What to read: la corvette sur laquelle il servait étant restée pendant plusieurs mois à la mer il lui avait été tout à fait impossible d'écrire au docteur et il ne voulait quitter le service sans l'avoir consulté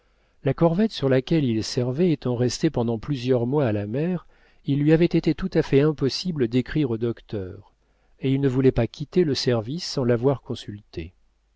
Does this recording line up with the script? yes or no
no